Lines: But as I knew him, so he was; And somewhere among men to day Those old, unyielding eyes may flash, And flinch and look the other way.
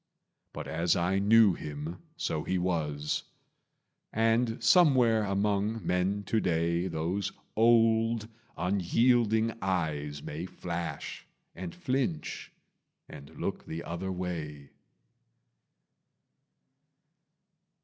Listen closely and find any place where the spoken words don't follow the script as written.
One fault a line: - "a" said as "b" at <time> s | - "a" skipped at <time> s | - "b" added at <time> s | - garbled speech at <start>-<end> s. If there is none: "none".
none